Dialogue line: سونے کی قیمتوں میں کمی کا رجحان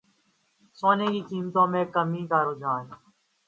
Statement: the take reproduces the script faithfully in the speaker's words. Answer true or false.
true